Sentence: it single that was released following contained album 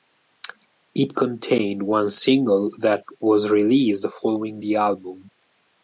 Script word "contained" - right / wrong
wrong